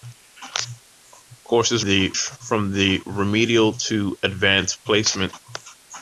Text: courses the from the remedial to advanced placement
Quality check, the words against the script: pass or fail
pass